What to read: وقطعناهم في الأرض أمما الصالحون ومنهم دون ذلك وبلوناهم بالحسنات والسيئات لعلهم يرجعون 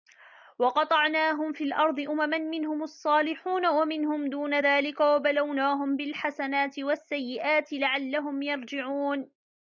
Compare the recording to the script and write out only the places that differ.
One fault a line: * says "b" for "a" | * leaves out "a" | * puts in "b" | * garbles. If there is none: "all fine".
* puts in "منهم"